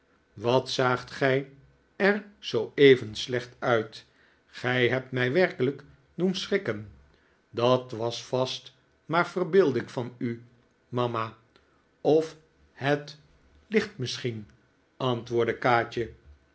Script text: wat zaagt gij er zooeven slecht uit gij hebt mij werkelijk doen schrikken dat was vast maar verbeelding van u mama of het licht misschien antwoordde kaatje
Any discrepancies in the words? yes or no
no